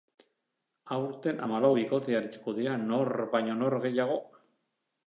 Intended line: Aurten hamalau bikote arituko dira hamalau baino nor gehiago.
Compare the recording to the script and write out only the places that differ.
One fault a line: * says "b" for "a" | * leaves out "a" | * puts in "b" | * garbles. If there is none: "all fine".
* says "nor" for "hamalau"